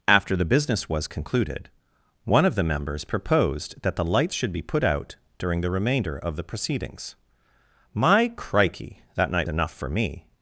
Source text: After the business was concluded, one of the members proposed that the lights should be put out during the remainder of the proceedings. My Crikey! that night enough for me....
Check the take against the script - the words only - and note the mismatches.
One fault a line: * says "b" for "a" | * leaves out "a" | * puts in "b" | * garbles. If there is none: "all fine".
all fine